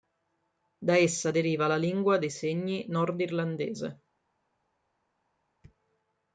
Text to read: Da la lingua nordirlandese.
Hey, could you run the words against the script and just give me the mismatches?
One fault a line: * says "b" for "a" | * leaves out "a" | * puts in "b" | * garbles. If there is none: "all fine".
* puts in "essa deriva"
* puts in "dei segni"